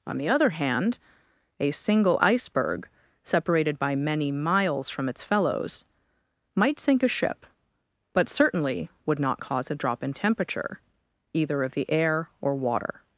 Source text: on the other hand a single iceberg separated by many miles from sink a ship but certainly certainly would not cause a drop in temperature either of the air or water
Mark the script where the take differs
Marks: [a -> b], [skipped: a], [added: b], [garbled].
on the other hand a single iceberg separated by many miles from [added: its fellows might] sink a ship but certainly [skipped: certainly] would not cause a drop in temperature either of the air or water